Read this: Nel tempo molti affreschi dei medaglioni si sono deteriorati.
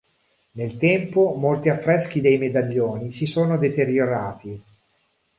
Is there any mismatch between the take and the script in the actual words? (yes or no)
no